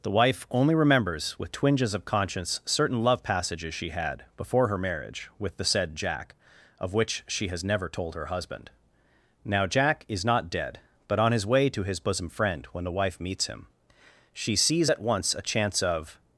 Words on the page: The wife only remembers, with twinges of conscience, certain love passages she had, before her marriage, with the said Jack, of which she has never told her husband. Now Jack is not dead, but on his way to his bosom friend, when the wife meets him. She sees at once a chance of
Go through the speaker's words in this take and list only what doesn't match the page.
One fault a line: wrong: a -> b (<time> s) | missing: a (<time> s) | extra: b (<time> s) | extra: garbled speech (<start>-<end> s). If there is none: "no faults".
no faults